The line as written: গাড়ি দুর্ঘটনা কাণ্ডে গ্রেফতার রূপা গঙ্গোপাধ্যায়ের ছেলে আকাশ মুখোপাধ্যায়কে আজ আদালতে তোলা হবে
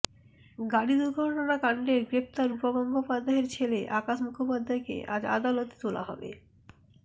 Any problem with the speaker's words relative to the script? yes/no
no